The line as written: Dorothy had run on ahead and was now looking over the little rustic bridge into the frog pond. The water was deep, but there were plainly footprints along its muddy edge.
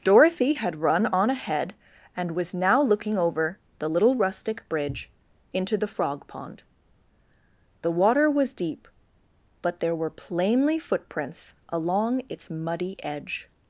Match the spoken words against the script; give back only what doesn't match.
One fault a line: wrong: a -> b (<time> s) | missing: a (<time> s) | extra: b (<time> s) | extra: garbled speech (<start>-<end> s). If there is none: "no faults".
no faults